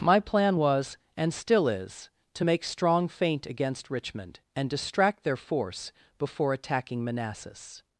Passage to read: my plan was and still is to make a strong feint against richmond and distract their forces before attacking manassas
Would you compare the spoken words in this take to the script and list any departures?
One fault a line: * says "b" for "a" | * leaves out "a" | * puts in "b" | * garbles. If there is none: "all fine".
* leaves out "a"
* says "force" for "forces"